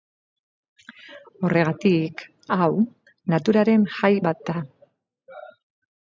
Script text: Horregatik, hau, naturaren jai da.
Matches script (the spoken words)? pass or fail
fail